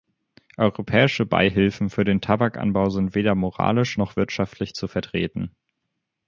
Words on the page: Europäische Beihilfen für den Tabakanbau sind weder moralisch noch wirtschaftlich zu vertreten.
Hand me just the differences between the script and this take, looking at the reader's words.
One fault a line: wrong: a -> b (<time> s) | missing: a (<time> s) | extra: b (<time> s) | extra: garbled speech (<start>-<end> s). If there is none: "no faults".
no faults